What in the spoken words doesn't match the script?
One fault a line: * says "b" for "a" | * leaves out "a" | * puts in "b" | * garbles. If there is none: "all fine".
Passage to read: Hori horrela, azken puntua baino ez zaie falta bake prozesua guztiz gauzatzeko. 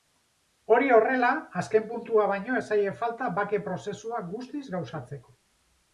all fine